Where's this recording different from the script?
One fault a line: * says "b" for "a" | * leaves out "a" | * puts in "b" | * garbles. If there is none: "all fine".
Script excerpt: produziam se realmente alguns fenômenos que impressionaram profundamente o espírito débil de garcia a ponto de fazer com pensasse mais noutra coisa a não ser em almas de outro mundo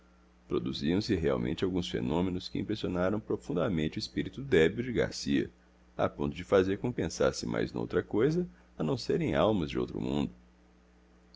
all fine